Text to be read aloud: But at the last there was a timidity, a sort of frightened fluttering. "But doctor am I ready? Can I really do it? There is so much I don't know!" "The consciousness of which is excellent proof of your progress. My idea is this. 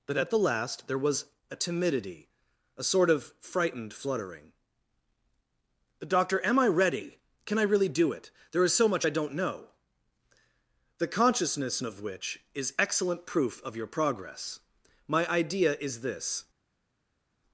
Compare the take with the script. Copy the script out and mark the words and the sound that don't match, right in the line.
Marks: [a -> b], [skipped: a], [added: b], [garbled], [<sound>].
But at the last there was a timidity, a sort of frightened fluttering. [skipped: "But] doctor am I ready? Can I really do it? There is so much I don't know!" "The consciousness of which is excellent proof of your progress. My idea is this.